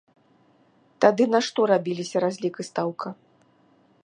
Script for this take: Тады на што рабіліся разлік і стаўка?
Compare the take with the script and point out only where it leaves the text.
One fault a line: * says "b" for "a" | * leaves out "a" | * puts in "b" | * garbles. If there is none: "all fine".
all fine